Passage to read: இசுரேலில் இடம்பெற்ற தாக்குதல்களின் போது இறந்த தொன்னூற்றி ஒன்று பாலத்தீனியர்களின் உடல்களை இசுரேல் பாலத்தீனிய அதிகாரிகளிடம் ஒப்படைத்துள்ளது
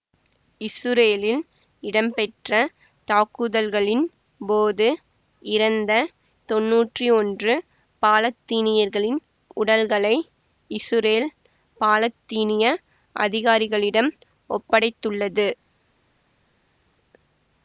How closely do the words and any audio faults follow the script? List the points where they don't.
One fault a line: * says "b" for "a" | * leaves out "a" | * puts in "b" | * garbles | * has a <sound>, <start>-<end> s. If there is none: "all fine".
all fine